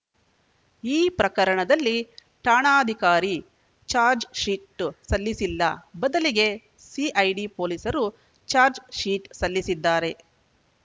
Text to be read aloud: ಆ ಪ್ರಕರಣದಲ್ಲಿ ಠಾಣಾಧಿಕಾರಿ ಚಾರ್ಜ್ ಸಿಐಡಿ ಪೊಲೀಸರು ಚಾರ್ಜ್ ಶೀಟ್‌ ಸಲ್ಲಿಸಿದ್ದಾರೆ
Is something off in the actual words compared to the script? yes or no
yes